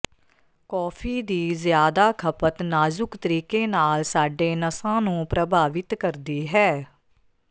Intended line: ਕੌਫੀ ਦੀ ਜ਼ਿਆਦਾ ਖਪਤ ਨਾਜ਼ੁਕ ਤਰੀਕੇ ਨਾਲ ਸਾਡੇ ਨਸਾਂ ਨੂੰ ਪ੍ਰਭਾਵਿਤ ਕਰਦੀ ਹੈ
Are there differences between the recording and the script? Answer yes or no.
no